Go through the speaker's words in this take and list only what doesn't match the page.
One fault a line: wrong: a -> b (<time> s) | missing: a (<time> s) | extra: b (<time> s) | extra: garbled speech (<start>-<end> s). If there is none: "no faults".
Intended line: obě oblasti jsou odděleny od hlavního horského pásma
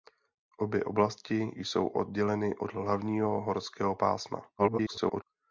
extra: garbled speech (4.6-5.2 s)